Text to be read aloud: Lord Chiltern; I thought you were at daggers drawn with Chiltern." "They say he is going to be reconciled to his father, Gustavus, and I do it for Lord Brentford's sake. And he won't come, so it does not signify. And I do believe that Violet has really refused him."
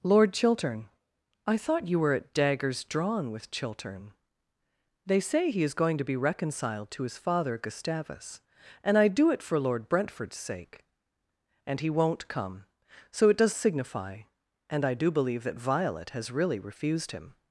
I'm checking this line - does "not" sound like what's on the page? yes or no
no